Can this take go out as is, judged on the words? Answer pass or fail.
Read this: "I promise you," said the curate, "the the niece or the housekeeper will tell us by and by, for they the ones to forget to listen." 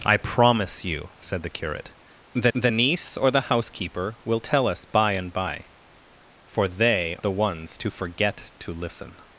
pass